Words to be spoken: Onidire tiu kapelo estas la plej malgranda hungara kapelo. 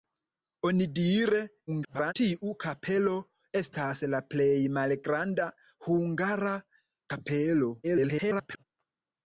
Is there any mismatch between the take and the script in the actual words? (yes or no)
yes